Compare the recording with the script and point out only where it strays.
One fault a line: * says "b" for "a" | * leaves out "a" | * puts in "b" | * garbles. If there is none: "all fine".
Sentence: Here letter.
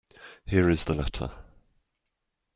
* puts in "is the"